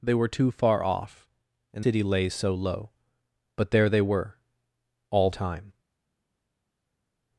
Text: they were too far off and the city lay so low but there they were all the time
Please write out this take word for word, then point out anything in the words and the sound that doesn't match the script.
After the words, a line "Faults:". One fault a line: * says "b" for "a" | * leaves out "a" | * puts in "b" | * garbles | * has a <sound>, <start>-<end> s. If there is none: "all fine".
they were too far off and city lay so low but there they were all time
Faults:
* leaves out "the"
* leaves out "the"